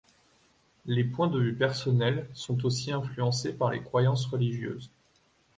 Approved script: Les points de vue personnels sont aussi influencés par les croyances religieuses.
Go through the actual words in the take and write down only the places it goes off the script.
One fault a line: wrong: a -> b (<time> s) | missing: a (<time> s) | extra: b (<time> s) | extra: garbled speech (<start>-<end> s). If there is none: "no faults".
no faults